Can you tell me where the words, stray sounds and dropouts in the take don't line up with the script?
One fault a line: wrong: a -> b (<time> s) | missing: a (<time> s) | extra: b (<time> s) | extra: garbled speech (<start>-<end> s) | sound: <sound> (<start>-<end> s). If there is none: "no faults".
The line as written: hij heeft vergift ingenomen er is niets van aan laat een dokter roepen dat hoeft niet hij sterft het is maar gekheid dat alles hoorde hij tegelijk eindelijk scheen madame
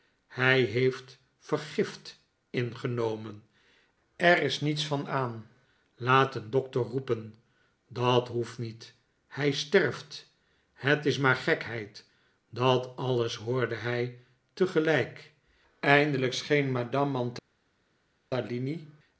no faults